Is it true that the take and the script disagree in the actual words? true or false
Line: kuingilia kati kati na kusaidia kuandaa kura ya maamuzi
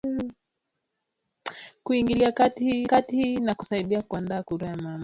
false